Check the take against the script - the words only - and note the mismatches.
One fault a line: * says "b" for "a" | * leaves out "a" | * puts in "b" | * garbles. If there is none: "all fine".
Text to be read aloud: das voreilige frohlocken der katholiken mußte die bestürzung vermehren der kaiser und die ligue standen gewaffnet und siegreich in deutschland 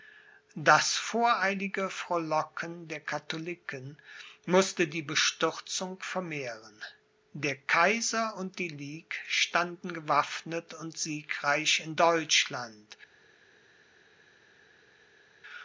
all fine